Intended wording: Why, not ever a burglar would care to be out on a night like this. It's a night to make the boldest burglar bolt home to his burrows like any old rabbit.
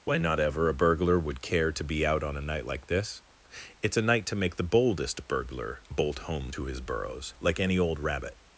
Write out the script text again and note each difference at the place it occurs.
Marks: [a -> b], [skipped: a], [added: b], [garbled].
Why, not ever a burglar would care to be out on a night like this. It's a night to make the boldest burglar bolt home to his burrows like any old rabbit.